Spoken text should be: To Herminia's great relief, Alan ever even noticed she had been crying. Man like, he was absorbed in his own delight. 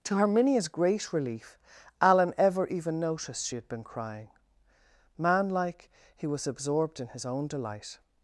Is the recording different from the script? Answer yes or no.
no